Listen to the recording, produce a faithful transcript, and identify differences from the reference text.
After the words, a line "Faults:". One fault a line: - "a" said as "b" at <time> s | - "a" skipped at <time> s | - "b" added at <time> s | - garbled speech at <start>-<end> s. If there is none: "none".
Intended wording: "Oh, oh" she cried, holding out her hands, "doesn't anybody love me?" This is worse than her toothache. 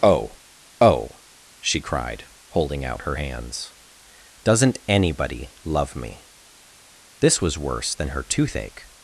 "Oh, oh" she cried, holding out her hands, "doesn't anybody love me?" This was worse than her toothache.
Faults:
- "is" said as "was" at 7.4 s